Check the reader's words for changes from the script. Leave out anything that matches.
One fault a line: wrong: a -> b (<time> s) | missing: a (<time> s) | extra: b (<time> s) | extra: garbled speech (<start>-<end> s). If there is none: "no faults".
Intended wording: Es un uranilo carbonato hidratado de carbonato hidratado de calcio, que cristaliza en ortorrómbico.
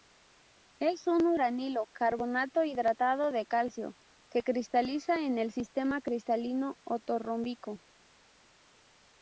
missing: carbonato hidratado de (3.5 s)
extra: el sistema cristalino (5.4 s)